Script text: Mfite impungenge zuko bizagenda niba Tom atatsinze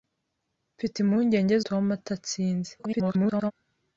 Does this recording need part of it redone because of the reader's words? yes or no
yes